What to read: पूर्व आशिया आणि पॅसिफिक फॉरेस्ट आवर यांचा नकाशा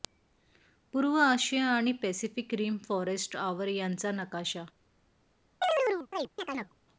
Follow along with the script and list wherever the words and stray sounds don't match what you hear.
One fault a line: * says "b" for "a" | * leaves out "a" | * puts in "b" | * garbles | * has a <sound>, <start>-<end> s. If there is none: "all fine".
* puts in "रिम"
* has a chirp, 5.6-6.8 s